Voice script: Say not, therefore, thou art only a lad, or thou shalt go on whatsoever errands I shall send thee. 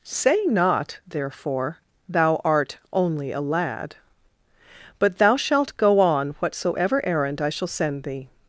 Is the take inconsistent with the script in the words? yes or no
yes